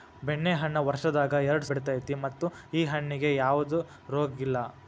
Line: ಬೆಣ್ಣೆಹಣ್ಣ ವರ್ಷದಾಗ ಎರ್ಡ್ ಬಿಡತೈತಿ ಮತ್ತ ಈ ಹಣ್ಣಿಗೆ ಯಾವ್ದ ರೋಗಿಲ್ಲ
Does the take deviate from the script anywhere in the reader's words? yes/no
no